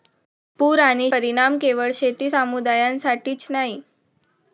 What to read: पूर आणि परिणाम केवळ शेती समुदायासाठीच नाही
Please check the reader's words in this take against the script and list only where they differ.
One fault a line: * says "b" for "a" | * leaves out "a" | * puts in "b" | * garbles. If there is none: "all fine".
all fine